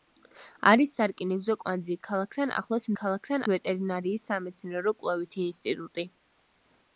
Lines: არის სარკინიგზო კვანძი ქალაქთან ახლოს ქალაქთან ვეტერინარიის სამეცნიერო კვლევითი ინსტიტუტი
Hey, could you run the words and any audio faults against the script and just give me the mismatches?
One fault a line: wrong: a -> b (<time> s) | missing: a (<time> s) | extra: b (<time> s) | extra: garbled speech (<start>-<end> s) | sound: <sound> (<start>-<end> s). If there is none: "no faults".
no faults